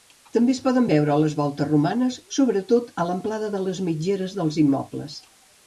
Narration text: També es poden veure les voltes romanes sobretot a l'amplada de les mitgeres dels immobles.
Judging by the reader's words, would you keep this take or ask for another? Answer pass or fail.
pass